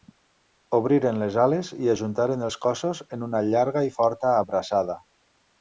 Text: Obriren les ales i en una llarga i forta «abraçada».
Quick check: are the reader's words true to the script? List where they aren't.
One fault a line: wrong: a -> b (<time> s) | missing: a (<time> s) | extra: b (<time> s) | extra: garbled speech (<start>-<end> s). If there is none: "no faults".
extra: ajuntaren els cossos (1.9 s)